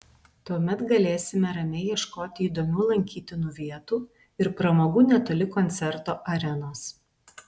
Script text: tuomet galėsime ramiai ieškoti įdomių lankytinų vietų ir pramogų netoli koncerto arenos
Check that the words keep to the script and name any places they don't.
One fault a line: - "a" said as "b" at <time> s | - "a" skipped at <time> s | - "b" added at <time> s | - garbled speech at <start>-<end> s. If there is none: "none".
none